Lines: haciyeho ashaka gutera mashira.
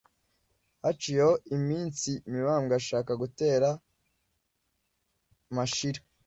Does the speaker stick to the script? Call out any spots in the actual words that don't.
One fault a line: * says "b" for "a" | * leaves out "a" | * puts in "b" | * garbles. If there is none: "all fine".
* puts in "iminsi mibambwe"